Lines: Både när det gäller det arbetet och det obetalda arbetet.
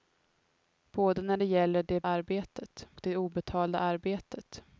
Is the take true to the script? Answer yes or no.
yes